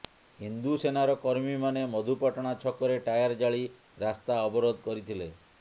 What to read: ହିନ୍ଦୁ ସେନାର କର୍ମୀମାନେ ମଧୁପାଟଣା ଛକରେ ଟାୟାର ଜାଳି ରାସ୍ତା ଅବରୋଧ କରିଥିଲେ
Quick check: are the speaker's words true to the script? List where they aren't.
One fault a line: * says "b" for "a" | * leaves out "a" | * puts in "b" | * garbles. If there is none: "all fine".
all fine